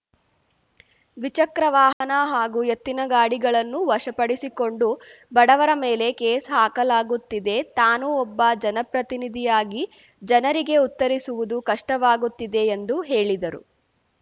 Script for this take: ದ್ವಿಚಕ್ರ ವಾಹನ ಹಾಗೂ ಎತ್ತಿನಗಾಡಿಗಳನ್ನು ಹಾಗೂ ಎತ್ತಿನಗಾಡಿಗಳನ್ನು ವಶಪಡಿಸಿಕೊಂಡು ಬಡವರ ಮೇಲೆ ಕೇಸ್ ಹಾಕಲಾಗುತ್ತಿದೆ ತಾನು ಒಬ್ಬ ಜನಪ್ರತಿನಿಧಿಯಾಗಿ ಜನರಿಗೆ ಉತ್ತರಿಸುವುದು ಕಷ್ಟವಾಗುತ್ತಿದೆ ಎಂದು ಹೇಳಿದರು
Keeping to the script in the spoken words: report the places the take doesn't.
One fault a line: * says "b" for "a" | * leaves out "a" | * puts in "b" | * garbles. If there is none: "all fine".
* leaves out "ಹಾಗೂ ಎತ್ತಿನಗಾಡಿಗಳನ್ನು"